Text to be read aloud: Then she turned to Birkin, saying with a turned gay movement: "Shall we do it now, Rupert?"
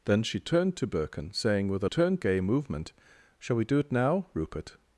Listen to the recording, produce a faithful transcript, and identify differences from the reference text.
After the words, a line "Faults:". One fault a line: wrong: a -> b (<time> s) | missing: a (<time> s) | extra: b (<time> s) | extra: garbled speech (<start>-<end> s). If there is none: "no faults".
Then she turned to Birkin, saying with a turned gay movement: "Shall we do it now, Rupert?"
Faults:
no faults